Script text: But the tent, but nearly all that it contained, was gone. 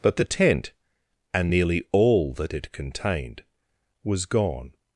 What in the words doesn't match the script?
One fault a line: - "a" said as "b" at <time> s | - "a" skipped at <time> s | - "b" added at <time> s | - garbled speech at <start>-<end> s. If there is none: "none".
- "but" said as "and" at 1.3 s